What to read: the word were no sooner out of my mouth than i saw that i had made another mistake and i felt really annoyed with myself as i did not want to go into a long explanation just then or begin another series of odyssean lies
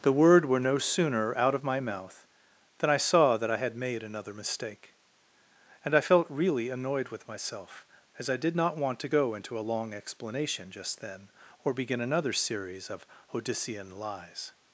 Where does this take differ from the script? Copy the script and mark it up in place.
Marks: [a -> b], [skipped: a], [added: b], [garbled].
the word were no sooner out of my mouth than i saw that i had made another mistake and i felt really annoyed with myself as i did not want to go into a long explanation just then or begin another series of odyssean lies